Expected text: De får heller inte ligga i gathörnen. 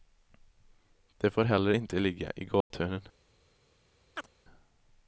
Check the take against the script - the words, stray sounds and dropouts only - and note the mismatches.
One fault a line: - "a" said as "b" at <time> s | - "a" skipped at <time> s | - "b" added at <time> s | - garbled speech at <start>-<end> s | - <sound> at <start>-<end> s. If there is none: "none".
- dropout at 2.6-2.7 s
- chirp at 4.2-4.3 s